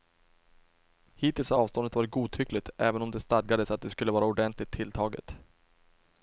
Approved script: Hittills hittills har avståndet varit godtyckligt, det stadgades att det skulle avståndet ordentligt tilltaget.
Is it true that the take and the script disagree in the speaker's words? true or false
true